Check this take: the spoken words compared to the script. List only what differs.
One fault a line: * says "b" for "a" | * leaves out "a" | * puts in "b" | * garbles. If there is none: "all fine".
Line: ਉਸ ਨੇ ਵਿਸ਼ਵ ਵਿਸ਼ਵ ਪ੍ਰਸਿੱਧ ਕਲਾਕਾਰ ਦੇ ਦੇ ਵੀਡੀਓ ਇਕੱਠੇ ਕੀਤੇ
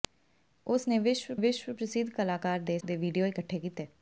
all fine